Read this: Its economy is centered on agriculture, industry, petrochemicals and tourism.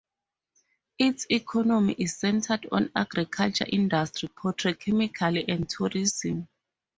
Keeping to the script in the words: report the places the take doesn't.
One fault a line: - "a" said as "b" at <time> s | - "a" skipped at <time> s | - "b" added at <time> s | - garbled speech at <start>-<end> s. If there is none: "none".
none